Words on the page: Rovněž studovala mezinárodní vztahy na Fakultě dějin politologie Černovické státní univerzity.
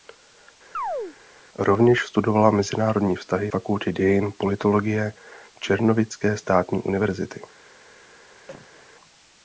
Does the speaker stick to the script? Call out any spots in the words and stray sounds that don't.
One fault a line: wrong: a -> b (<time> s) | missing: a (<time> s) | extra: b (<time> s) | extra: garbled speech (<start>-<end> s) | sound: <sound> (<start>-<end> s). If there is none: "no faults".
sound: chirp (0.7-1.2 s)
missing: na (3.5 s)
sound: cough (8.5-8.9 s)